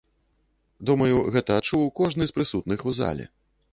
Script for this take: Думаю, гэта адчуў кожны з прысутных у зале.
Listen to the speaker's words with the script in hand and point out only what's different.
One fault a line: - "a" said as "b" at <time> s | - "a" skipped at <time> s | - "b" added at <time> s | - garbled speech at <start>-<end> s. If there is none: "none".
none